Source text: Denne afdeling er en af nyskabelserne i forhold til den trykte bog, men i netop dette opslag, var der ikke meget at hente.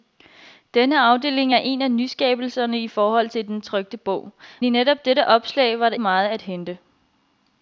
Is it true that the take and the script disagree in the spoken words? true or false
true